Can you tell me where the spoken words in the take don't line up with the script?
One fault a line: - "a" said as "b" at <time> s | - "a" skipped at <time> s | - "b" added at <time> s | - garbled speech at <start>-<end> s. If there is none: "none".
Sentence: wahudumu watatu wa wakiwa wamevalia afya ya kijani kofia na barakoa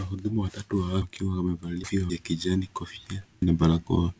none